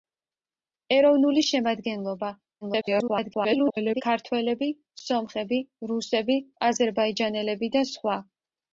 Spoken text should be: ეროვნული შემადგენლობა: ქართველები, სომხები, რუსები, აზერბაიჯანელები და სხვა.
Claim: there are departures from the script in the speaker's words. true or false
true